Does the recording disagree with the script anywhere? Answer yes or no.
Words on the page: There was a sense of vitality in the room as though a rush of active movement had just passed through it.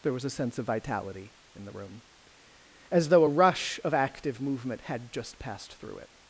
no